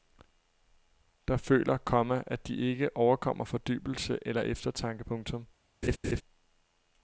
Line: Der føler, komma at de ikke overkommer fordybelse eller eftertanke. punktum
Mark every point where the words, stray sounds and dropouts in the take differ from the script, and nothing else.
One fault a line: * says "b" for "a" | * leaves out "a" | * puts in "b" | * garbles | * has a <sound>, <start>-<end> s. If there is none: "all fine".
* has a laugh, 5.8-6.2 s